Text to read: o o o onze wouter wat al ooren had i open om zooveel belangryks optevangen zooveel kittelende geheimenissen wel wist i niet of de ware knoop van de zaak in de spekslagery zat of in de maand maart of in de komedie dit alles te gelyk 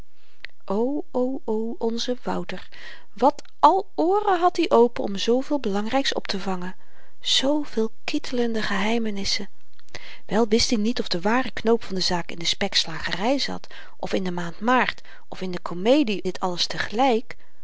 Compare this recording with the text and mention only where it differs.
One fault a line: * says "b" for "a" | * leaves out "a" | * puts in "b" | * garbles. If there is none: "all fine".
all fine